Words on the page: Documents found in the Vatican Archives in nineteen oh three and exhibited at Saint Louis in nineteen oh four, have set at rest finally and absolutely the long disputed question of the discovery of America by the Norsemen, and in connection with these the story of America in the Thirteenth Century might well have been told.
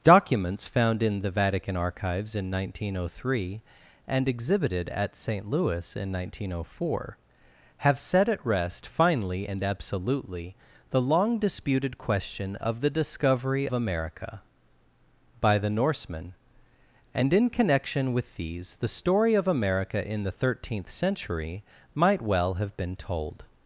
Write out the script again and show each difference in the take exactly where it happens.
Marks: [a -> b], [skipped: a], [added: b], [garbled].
Documents found in the Vatican Archives in nineteen oh three and exhibited at Saint Louis in nineteen oh four, have set at rest finally and absolutely the long disputed question of the discovery [skipped: of] America by the Norsemen, and in connection with these the story of America in the Thirteenth Century might well have been told.